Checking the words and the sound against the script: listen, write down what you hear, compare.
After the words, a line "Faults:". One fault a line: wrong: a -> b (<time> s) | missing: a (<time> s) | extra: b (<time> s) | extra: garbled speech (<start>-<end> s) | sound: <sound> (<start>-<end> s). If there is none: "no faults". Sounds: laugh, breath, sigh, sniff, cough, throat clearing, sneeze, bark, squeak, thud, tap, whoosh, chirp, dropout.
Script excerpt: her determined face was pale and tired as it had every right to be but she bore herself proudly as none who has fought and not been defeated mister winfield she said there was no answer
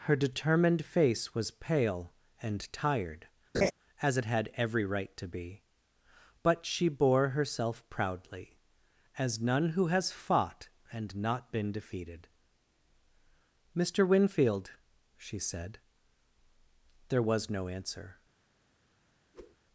her determined face was pale and tired as it had every right to be but she bore herself proudly as none who has fought and not been defeated mister winfield she said there was no answer
Faults:
sound: laugh (3.5-3.7 s)
sound: whoosh (19.3-19.6 s)